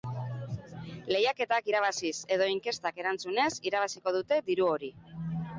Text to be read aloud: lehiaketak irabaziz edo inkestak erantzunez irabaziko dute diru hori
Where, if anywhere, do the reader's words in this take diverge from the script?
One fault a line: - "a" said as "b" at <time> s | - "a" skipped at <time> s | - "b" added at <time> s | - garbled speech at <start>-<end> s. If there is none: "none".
none